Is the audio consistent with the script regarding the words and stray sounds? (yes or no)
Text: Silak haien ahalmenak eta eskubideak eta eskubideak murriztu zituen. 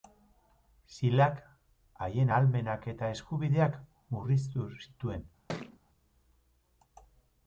no